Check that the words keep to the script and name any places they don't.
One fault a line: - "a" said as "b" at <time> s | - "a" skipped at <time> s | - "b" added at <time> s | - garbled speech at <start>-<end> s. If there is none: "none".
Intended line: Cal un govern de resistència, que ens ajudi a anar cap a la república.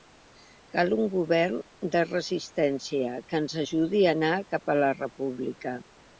none